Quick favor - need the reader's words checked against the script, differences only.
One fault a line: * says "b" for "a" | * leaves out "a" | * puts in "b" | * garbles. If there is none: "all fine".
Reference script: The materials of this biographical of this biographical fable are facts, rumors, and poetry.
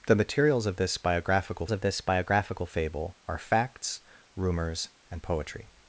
all fine